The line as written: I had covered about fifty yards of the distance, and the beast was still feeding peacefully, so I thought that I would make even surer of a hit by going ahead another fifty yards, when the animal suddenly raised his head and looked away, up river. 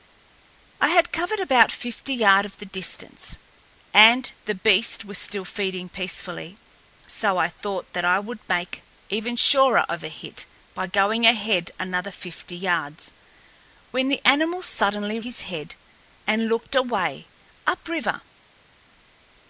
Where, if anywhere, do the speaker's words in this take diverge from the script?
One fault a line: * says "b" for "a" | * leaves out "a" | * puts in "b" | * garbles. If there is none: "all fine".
* leaves out "raised"